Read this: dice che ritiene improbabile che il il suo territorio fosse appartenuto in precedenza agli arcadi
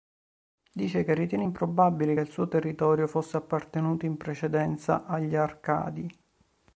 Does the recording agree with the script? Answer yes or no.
no